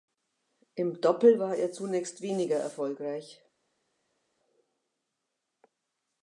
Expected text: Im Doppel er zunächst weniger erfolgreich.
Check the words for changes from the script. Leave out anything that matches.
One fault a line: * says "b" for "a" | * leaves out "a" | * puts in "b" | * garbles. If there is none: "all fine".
* puts in "war"